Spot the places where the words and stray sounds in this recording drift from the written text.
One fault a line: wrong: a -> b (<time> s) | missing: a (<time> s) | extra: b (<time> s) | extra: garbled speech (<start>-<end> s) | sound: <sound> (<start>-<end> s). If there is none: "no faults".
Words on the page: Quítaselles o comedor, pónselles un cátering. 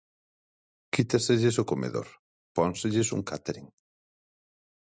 no faults